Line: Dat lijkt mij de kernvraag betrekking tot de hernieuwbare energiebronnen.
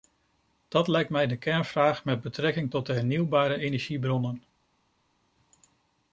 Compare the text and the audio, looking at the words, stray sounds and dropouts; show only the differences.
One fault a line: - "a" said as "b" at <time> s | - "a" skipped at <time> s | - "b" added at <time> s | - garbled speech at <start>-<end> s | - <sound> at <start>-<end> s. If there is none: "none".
- "met" added at 2.0 s